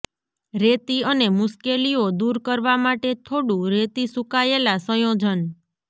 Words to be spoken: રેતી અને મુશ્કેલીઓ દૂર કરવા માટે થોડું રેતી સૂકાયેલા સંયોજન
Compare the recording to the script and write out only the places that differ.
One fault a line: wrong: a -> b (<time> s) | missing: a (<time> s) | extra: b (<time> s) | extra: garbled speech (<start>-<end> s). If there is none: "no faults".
no faults